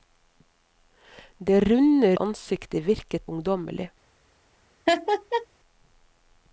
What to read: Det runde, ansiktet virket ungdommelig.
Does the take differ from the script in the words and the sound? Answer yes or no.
yes